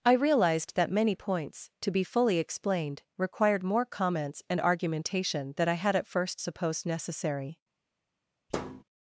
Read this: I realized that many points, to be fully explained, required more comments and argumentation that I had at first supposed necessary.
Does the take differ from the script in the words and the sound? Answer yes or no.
yes